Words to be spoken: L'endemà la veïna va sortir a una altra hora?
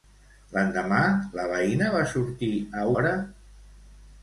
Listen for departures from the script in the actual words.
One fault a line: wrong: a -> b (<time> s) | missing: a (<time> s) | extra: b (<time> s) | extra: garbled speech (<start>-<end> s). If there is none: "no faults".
missing: una altra (2.9 s)